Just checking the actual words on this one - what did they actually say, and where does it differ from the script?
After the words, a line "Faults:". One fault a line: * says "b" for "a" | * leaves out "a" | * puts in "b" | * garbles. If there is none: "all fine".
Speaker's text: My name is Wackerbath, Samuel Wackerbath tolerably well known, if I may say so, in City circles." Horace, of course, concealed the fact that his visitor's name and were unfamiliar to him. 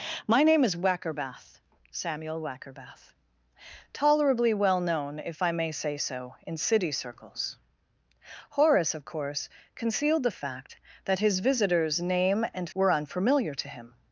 My name is Wackerbath, Samuel Wackerbath tolerably well known, if I may say so, in City circles." Horace, of course, concealed the fact that his visitor's name and were unfamiliar to him.
Faults:
all fine